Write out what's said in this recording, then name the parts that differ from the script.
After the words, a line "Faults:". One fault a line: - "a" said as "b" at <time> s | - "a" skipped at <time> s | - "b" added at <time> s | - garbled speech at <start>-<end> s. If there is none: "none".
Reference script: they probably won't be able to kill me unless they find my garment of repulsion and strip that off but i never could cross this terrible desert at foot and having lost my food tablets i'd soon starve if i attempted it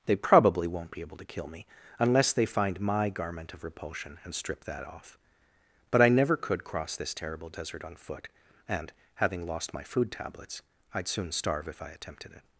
they probably won't be able to kill me unless they find my garment of repulsion and strip that off but i never could cross this terrible desert on foot and having lost my food tablets i'd soon starve if i attempted it
Faults:
- "at" said as "on" at 7.8 s